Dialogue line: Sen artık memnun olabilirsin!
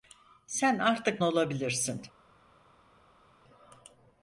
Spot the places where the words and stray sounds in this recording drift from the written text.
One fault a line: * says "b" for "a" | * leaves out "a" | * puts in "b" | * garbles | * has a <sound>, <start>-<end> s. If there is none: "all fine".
* leaves out "memnun"